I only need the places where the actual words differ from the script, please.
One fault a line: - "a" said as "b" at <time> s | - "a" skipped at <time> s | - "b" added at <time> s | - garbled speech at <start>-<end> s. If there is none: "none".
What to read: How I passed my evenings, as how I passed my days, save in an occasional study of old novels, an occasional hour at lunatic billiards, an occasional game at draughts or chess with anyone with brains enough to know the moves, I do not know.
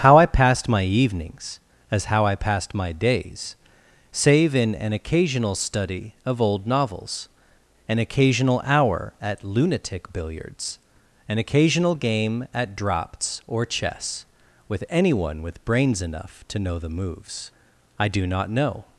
none